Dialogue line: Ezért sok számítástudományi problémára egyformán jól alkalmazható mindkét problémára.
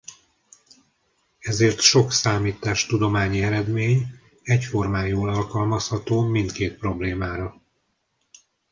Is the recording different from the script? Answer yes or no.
yes